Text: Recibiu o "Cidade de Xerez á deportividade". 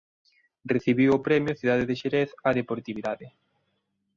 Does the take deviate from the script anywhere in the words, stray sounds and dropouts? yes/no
yes